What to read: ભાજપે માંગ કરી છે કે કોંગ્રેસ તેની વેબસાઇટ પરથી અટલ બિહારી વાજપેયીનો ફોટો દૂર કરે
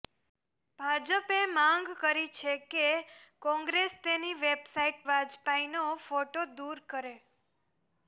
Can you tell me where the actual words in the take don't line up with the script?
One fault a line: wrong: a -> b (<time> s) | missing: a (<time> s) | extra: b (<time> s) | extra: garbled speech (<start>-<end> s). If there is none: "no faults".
missing: પરથી અટલ બિહારી (5.0 s)